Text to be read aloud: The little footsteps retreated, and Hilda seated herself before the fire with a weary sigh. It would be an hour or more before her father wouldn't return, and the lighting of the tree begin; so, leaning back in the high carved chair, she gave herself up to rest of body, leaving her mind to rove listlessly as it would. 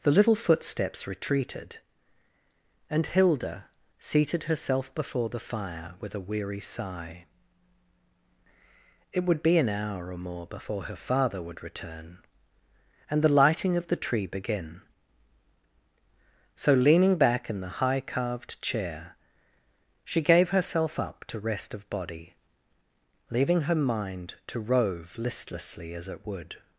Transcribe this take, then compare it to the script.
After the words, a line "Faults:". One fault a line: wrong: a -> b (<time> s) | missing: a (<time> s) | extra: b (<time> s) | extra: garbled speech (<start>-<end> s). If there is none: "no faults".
The little footsteps retreated, and Hilda seated herself before the fire with a weary sigh. It would be an hour or more before her father would return, and the lighting of the tree begin; so, leaning back in the high carved chair, she gave herself up to rest of body, leaving her mind to rove listlessly as it would.
Faults:
wrong: wouldn't -> would (11.4 s)